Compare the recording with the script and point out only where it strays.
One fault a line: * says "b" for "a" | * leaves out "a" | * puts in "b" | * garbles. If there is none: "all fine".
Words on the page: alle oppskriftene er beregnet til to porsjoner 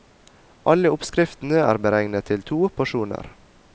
all fine